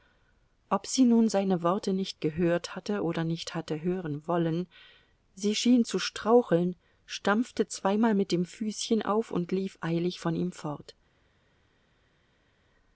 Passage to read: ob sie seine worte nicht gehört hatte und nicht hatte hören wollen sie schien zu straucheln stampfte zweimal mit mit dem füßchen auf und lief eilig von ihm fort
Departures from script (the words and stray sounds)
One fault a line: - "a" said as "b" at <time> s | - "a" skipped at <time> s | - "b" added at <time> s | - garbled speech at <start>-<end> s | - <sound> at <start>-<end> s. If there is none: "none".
- "nun" added at 1.0 s
- "und" said as "oder" at 3.0 s
- "mit" skipped at 8.3 s